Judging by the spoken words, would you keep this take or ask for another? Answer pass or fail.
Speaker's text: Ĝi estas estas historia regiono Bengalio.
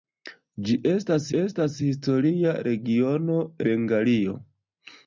pass